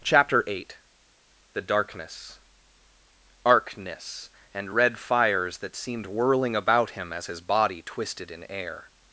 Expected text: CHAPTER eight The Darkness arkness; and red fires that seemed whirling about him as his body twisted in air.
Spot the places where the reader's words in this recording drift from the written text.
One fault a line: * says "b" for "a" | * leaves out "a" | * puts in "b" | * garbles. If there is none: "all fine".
all fine